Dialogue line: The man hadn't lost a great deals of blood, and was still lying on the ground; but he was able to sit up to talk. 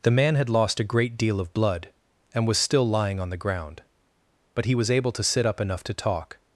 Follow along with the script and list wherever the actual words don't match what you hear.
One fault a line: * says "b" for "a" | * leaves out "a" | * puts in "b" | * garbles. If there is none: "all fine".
* says "had" for "hadn't"
* says "deal" for "deals"
* puts in "enough"